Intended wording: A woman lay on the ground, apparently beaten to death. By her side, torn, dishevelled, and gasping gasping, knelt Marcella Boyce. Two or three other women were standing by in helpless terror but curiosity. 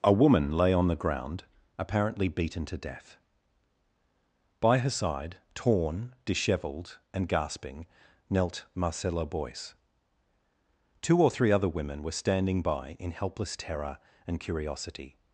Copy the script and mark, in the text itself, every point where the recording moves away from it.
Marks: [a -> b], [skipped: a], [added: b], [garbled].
A woman lay on the ground, apparently beaten to death. By her side, torn, dishevelled, and gasping [skipped: gasping,] knelt Marcella Boyce. Two or three other women were standing by in helpless terror [but -> and] curiosity.